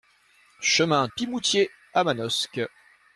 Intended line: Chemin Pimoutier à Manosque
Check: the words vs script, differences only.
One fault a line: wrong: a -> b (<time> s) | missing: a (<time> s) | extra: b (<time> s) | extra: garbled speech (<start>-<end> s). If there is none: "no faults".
no faults